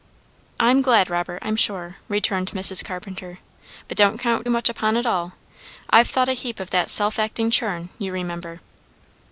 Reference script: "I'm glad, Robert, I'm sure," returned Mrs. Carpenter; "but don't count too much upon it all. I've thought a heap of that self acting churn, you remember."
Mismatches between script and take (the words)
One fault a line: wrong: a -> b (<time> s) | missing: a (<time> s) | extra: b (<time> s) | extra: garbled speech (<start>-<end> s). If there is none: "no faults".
missing: too (4.5 s)